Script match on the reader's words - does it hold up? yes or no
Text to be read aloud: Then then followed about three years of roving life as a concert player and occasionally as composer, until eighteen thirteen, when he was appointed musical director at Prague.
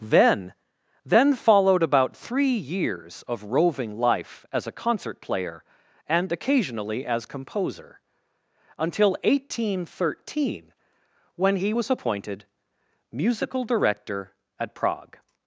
yes